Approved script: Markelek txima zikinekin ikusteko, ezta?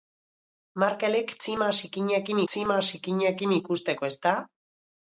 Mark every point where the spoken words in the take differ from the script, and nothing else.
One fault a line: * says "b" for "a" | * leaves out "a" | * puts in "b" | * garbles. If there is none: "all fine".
* puts in "txima zikinekin"